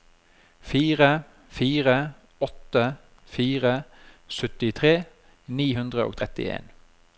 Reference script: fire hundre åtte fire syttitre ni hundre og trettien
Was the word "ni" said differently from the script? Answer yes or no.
no